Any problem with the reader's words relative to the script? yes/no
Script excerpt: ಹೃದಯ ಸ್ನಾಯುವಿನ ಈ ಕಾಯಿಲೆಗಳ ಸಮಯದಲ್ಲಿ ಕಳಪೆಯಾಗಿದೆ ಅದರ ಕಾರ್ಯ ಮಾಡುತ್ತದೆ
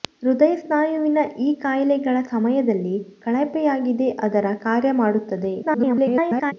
yes